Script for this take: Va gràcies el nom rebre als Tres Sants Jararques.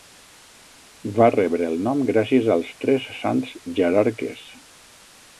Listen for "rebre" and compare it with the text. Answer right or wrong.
wrong